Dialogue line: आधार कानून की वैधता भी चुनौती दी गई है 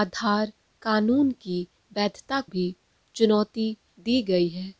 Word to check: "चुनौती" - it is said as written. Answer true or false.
true